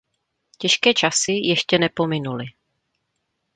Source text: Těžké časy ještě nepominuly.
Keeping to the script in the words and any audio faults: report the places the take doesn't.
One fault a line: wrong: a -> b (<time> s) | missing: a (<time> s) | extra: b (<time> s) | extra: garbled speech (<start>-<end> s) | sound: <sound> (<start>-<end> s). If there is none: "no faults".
no faults